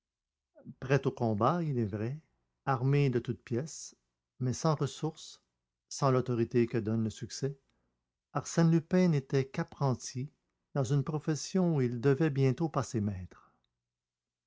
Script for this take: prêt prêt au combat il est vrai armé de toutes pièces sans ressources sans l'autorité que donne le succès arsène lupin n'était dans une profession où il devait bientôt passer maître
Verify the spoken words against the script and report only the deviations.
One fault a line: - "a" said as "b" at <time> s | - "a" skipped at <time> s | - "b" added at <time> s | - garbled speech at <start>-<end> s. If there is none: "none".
- "prêt" skipped at 1.1 s
- "mais" added at 4.4 s
- "qu'apprenti" added at 9.5 s